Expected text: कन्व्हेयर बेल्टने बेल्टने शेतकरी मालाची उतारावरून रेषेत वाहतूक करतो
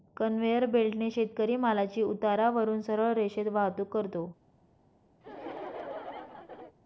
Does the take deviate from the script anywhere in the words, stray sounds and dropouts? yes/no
yes